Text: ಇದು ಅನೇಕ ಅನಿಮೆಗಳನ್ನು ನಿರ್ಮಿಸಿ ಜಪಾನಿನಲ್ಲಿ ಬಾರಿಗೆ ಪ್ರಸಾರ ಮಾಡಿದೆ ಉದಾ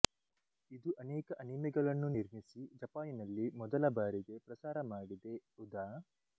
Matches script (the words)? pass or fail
fail